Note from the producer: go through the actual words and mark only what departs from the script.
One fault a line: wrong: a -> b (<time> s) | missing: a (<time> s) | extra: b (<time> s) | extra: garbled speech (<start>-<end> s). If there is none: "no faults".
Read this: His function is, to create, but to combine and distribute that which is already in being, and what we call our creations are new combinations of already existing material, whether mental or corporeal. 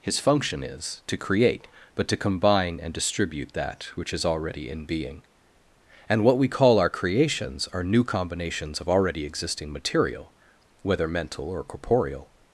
no faults